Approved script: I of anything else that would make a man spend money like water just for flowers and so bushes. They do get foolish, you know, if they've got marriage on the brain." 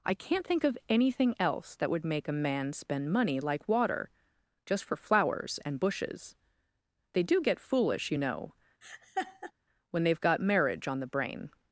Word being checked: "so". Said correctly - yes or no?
no